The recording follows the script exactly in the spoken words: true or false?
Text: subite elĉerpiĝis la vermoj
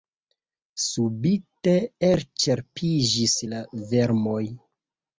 true